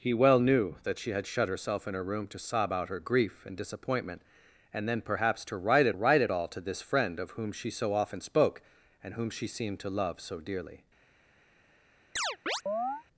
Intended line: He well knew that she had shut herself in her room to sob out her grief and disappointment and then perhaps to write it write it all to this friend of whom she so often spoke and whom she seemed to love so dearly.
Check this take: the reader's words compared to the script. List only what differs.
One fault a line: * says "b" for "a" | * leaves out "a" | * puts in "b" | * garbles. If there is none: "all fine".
all fine